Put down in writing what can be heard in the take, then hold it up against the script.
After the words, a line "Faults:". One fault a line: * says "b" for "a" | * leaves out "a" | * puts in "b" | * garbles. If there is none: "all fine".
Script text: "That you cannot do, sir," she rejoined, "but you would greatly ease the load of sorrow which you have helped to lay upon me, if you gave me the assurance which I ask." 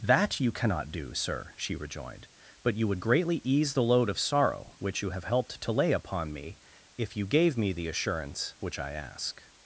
"That you cannot do, sir," she rejoined, "but you would greatly ease the load of sorrow which you have helped to lay upon me, if you gave me the assurance which I ask."
Faults:
all fine